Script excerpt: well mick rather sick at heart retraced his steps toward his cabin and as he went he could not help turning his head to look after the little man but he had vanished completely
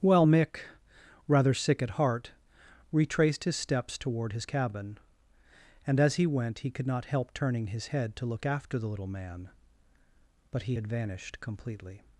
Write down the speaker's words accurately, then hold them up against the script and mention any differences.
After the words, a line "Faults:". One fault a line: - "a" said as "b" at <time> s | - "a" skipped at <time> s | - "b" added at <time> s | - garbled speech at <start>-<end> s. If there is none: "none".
well mick rather sick at heart retraced his steps toward his cabin and as he went he could not help turning his head to look after the little man but he had vanished completely
Faults:
none